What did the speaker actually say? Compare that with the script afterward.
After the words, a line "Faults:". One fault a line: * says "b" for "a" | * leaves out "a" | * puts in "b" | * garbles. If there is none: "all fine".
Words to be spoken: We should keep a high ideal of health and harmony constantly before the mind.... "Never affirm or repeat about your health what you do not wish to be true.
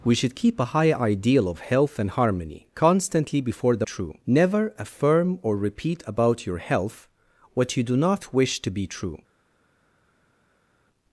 We should keep a high ideal of health and harmony constantly before the true.... "Never affirm or repeat about your health what you do not wish to be true.
Faults:
* says "true" for "mind"